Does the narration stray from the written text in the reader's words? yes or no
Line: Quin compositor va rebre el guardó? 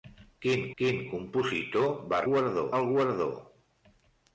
yes